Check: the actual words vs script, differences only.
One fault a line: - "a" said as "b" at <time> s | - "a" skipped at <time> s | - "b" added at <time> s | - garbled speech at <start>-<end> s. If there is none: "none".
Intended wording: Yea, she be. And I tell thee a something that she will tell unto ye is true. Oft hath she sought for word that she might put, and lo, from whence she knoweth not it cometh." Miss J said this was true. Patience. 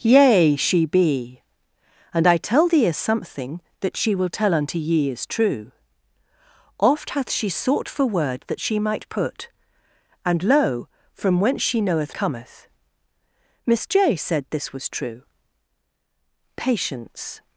- "not it" skipped at 12.2 s